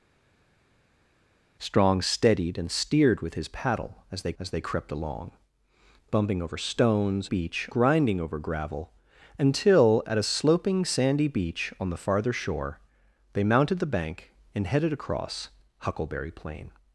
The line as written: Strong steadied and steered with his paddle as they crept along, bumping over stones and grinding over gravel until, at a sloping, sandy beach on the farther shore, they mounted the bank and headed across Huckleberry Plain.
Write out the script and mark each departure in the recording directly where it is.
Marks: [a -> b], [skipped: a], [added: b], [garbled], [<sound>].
Strong steadied and steered with his paddle as they [added: as they] crept along, bumping over stones [and -> beach] grinding over gravel until, at a sloping, sandy beach on the farther shore, they mounted the bank and headed across Huckleberry Plain.